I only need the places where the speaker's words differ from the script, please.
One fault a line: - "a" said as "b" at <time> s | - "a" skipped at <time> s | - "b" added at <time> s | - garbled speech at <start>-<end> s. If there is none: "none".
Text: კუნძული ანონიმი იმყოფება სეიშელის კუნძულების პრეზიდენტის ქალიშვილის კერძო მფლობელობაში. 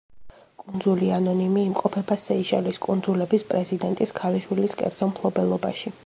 none